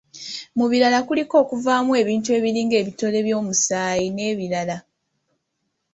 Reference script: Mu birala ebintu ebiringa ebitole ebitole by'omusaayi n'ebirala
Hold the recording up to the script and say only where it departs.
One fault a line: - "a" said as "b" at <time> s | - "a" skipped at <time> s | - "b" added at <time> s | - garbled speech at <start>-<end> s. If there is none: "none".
- "kuliko okuvaamu" added at 1.1 s
- "ebitole" skipped at 3.2 s